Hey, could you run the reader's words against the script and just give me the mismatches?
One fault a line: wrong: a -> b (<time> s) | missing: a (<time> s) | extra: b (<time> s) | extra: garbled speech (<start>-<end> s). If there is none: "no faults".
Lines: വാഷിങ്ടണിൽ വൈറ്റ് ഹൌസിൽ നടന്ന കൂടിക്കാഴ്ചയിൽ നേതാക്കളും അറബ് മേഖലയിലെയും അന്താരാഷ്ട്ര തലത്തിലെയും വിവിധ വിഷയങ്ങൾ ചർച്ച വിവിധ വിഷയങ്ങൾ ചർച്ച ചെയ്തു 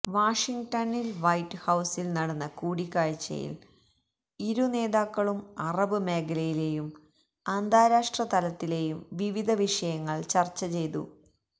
extra: ഇരു (4.4 s)
missing: വിവിധ വിഷയങ്ങൾ ചർച്ച (10.6 s)